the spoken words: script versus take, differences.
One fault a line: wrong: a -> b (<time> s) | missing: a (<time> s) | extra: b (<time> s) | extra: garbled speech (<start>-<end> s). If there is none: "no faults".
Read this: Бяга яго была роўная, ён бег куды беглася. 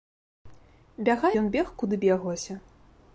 missing: яго была роўная (1.3 s)